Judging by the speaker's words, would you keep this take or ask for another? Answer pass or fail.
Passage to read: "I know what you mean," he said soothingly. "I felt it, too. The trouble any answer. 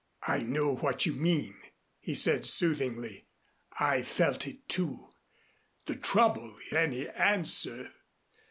pass